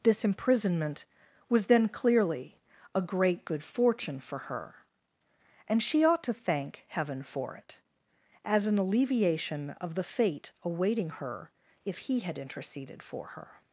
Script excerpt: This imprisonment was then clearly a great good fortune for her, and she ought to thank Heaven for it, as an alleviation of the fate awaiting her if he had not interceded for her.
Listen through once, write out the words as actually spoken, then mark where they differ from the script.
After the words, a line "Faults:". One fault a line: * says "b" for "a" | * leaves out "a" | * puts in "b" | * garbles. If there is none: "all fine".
This imprisonment was then clearly a great good fortune for her, and she ought to thank Heaven for it, as an alleviation of the fate awaiting her if he had interceded for her.
Faults:
* leaves out "not"